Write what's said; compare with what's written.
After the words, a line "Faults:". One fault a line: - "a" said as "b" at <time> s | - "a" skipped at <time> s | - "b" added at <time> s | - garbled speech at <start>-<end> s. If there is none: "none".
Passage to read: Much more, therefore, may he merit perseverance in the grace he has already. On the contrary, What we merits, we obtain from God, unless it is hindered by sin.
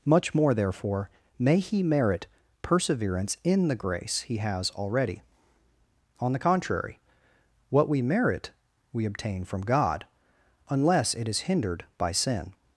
Much more, therefore, may he merit perseverance in the grace he has already. On the contrary, What we merit, we obtain from God, unless it is hindered by sin.
Faults:
- "merits" said as "merit" at 8.0 s